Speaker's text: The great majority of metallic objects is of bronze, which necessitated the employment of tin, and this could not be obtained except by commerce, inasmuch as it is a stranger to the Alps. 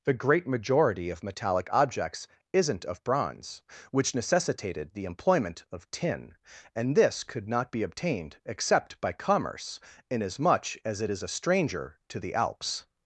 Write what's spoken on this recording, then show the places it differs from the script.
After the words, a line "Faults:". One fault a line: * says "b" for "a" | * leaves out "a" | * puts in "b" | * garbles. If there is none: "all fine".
The great majority of metallic objects isn't of bronze, which necessitated the employment of tin, and this could not be obtained except by commerce, inasmuch as it is a stranger to the Alps.
Faults:
* says "isn't" for "is"